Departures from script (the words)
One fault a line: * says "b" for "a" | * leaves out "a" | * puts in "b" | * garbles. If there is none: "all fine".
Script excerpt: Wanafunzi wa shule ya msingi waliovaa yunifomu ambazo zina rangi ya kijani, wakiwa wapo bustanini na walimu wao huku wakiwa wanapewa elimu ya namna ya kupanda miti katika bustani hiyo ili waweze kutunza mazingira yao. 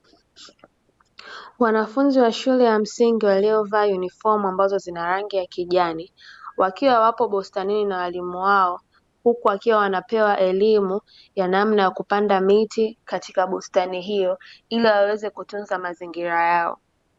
all fine